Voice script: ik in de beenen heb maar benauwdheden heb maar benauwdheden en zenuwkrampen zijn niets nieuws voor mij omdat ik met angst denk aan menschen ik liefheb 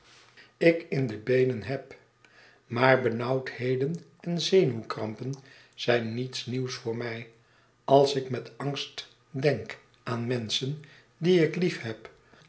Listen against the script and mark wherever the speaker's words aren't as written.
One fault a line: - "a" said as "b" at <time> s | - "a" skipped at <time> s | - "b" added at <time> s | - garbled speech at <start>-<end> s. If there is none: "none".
- "heb maar benauwdheden" skipped at 4.0 s
- "omdat" said as "als" at 7.8 s
- "die" added at 11.2 s